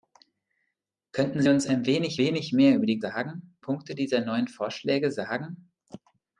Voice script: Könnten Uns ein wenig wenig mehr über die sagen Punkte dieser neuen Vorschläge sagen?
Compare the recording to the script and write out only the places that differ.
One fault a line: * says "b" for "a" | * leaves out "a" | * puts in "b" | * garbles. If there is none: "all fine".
all fine